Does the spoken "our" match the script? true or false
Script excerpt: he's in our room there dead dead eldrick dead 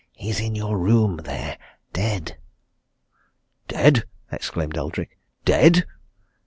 false